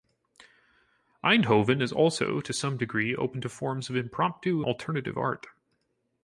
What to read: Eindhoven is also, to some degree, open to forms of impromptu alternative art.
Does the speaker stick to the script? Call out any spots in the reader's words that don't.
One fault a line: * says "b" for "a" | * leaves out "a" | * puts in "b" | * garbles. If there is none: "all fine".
all fine